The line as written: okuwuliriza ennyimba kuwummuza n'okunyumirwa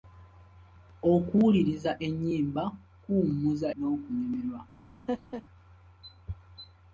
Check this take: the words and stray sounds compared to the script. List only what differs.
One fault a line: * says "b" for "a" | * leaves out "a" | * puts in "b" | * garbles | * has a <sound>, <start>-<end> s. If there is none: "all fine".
* has a laugh, 5.1-5.4 s